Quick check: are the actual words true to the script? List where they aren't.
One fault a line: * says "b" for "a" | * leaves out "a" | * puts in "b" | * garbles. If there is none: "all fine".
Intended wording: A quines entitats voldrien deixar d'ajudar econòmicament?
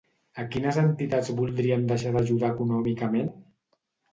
all fine